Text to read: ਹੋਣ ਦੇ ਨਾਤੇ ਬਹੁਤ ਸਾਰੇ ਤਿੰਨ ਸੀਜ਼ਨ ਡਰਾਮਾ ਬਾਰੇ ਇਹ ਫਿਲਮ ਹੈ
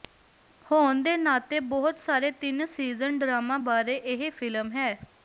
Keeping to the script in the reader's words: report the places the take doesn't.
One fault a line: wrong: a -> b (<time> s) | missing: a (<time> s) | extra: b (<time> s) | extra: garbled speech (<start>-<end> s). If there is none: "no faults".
no faults